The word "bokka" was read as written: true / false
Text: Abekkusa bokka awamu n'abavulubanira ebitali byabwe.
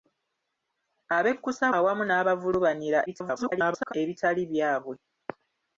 false